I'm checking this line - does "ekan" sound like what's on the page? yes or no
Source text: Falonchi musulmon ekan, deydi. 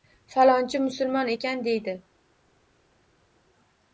yes